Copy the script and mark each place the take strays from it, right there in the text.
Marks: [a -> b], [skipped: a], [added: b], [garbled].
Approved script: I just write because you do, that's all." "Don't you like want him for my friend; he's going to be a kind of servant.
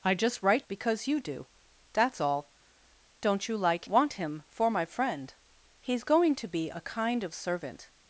I just write because you do, that's all." "Don't you like want him for my friend; he's going to be a kind of servant.